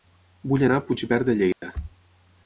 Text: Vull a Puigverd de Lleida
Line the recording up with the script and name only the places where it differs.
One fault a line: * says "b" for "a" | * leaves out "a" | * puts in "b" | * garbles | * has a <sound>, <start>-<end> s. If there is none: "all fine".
* puts in "anar"
* has a dropout, 1.5-1.6 s